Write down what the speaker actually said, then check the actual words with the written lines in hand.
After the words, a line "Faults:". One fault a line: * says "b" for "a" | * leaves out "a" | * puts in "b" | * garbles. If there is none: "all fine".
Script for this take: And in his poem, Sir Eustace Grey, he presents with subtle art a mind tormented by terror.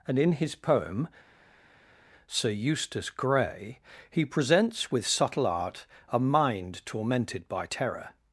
And in his poem, Sir Eustace Grey, he presents with subtle art a mind tormented by terror.
Faults:
all fine